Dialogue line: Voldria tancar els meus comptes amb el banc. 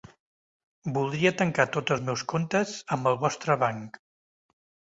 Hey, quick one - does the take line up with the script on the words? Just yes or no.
no